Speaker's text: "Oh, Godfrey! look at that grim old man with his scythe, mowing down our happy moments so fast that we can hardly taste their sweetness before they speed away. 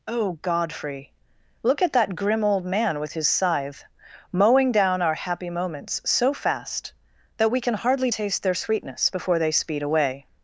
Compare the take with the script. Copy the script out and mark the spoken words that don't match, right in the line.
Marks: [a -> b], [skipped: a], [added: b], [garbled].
"Oh, Godfrey! look at that grim old man with his scythe, mowing down our happy moments so fast that we can hardly taste their sweetness before they speed away.